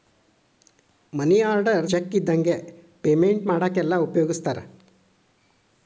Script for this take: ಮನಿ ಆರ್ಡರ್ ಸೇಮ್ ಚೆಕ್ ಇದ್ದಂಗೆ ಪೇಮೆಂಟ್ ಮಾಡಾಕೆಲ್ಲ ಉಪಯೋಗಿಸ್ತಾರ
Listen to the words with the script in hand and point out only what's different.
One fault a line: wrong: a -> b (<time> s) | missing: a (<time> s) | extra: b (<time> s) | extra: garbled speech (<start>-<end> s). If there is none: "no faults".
missing: ಸೇಮ್ (1.9 s)